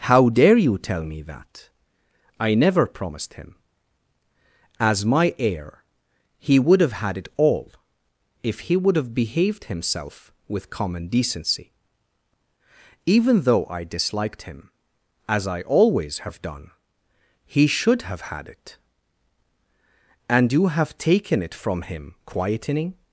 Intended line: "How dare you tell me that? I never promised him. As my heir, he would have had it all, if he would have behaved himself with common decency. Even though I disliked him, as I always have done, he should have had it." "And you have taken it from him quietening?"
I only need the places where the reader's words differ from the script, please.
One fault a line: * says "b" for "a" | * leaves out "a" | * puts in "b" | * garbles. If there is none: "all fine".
all fine